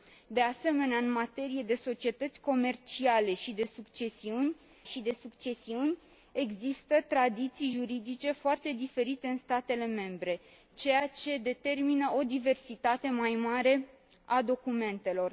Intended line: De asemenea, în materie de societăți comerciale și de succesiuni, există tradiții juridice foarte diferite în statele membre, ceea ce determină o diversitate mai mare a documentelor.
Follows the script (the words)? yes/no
no